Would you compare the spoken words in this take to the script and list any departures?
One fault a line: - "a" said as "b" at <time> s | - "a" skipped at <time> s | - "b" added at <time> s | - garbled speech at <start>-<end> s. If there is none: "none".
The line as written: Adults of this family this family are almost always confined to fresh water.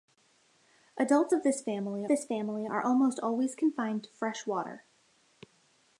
none